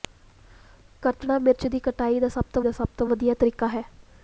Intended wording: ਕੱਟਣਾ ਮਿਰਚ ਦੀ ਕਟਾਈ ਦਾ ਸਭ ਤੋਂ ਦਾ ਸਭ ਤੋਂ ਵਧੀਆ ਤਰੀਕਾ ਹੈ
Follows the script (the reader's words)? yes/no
yes